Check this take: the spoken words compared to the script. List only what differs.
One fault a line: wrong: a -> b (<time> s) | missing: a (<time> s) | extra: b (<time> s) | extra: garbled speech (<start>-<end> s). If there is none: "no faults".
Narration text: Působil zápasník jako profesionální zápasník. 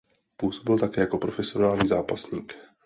wrong: zápasník -> také (0.8 s)